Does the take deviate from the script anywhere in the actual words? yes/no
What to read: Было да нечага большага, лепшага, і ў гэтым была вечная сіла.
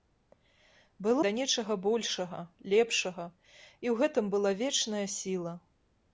no